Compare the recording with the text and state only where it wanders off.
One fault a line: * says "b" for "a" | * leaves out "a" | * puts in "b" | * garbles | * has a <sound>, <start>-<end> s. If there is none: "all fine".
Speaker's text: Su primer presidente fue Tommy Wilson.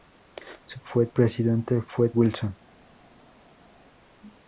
* says "fue" for "primer"
* leaves out "Tommy"